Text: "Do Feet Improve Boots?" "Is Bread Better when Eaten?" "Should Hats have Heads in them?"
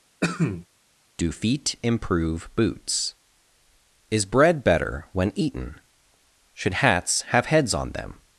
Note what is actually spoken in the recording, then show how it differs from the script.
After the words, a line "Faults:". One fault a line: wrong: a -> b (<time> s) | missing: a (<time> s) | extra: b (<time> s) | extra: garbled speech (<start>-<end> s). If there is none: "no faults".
"Do Feet Improve Boots?" "Is Bread Better when Eaten?" "Should Hats have Heads on them?"
Faults:
wrong: in -> on (7.7 s)